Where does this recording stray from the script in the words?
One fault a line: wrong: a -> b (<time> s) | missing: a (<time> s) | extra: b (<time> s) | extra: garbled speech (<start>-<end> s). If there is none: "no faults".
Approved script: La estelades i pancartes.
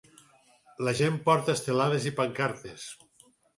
extra: gent porta (1.0 s)